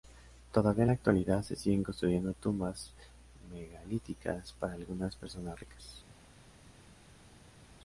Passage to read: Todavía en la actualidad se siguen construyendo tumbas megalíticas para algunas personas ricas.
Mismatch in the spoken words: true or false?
false